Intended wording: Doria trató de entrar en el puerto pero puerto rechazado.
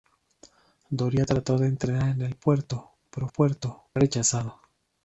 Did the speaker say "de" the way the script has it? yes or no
yes